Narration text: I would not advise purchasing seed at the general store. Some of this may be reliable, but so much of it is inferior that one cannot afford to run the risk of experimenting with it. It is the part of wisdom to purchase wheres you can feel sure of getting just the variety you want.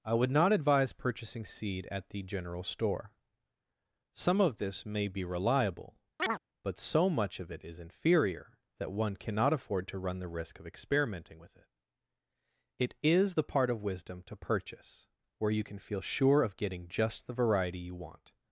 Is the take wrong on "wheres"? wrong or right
wrong